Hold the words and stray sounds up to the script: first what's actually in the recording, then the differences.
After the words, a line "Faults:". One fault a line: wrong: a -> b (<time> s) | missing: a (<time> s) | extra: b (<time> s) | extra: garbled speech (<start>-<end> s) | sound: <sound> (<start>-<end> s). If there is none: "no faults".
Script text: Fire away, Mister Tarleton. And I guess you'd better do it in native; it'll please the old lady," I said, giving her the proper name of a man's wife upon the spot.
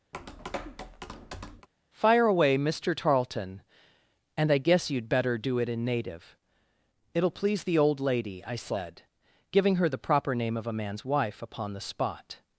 Fire away, Mister Tarleton. And I guess you'd better do it in native; it'll please the old lady," I said, giving her the proper name of a man's wife upon the spot.
Faults:
sound: tap (0.1-1.7 s)